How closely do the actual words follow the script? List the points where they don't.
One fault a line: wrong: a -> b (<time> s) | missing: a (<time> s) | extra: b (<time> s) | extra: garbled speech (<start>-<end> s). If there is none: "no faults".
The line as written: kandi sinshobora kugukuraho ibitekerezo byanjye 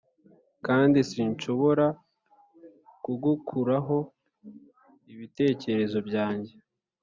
no faults